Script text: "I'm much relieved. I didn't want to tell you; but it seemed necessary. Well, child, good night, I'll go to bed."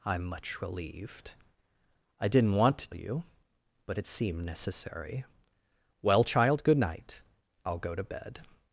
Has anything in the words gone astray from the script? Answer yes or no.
yes